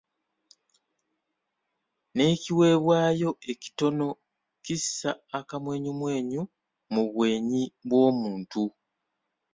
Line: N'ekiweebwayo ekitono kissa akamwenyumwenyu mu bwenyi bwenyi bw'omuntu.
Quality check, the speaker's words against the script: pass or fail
fail